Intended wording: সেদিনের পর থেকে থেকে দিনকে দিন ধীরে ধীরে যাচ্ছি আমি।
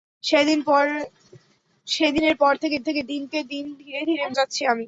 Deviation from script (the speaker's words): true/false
false